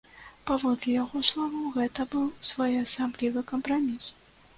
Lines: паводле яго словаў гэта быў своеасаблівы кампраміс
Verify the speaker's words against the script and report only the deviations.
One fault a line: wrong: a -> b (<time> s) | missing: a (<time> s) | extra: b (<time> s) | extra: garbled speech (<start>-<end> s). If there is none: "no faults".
no faults